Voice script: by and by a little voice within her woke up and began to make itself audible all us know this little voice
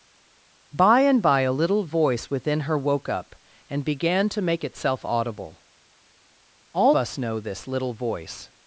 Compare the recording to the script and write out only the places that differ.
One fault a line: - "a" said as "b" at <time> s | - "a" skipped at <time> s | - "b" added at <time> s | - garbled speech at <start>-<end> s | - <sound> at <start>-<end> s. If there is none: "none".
none